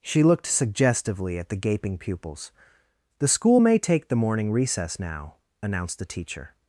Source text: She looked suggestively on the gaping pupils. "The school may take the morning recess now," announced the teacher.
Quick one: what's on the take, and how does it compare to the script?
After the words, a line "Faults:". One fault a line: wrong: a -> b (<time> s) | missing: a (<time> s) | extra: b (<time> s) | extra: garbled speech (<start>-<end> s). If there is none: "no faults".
She looked suggestively at the gaping pupils. "The school may take the morning recess now," announced the teacher.
Faults:
wrong: on -> at (1.4 s)